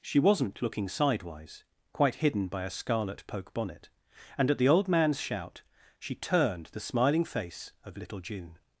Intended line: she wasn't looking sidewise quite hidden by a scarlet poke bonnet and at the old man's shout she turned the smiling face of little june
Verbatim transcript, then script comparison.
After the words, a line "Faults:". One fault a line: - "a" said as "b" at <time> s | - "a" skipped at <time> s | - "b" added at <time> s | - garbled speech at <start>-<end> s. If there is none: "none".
she wasn't looking sidewise quite hidden by a scarlet poke bonnet and at the old man's shout she turned the smiling face of little june
Faults:
none